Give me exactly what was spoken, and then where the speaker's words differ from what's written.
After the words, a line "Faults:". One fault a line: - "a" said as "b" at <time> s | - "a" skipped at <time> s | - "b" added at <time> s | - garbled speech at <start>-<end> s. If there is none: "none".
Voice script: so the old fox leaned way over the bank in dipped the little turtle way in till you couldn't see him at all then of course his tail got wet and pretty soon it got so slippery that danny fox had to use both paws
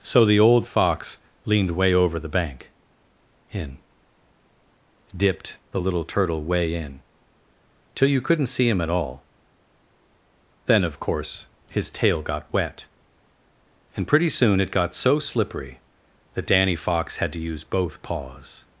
so the old fox leaned way over the bank in dipped the little turtle way in till you couldn't see him at all then of course his tail got wet and pretty soon it got so slippery that danny fox had to use both paws
Faults:
none